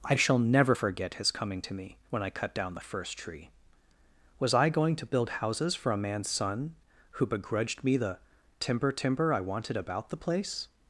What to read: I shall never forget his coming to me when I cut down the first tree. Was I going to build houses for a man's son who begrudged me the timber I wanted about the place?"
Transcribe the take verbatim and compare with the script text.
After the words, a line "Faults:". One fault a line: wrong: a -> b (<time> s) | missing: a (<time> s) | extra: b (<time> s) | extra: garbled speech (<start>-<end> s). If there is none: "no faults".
I shall never forget his coming to me when I cut down the first tree. Was I going to build houses for a man's son who begrudged me the timber timber I wanted about the place?"
Faults:
extra: timber (8.9 s)